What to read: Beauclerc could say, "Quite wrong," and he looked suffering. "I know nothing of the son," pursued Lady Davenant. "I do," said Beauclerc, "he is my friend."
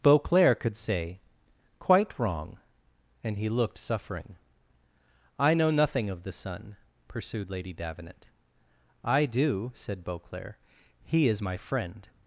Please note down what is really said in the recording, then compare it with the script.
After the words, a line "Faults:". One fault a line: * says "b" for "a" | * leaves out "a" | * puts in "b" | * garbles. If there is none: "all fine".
Beauclerc could say, "Quite wrong," and he looked suffering. "I know nothing of the son," pursued Lady Davenant. "I do," said Beauclerc, "he is my friend."
Faults:
all fine